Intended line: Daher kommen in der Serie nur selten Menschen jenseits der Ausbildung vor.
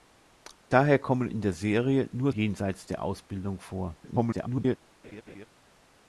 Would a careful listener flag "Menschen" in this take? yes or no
yes